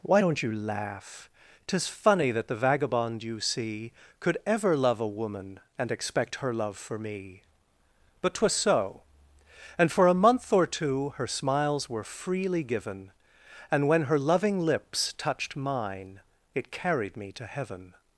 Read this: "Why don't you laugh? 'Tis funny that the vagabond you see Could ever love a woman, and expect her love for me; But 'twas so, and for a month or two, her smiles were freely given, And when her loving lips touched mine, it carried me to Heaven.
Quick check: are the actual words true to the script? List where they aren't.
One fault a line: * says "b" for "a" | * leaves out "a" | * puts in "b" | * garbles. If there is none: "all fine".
all fine